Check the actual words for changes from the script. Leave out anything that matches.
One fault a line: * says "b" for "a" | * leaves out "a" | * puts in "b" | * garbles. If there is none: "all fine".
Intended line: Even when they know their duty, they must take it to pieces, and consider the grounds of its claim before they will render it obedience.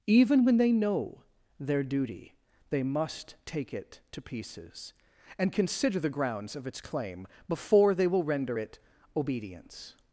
all fine